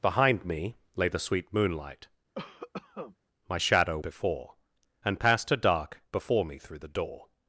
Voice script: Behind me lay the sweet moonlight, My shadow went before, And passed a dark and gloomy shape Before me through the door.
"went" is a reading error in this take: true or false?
true